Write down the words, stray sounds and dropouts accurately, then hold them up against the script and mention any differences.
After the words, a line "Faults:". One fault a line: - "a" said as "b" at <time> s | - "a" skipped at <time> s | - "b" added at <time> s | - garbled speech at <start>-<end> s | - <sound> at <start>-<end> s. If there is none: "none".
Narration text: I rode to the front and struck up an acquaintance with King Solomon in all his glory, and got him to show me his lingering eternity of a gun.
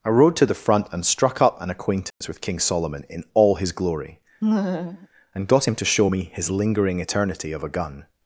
I rode to the front and struck up an acquaintance with King Solomon in all his glory, and got him to show me his lingering eternity of a gun.
Faults:
- dropout at 2.1-2.2 s
- laugh at 4.4-5.1 s